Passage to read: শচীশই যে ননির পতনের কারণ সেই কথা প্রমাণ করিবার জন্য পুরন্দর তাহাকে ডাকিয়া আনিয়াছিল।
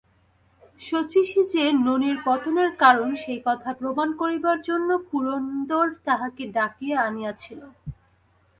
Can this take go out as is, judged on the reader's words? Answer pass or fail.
pass